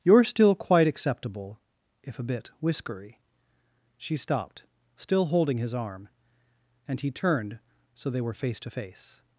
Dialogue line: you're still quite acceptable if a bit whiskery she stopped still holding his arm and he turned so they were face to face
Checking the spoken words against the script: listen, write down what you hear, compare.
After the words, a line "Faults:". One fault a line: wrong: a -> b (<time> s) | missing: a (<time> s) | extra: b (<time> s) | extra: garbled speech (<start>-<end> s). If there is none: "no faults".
you're still quite acceptable if a bit whiskery she stopped still holding his arm and he turned so they were face to face
Faults:
no faults